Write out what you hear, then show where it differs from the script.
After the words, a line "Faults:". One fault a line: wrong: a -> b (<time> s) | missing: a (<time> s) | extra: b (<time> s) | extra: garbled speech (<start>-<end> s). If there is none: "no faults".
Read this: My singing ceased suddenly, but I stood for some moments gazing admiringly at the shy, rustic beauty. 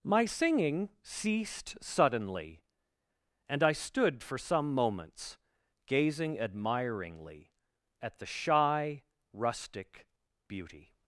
My singing ceased suddenly, and I stood for some moments gazing admiringly at the shy, rustic beauty.
Faults:
wrong: but -> and (3.5 s)